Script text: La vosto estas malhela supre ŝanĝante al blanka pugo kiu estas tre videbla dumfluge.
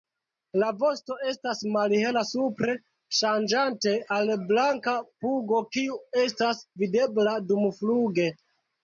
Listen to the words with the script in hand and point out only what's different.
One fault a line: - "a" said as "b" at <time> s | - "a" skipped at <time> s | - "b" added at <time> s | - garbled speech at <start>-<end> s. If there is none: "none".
- "tre" skipped at 6.7 s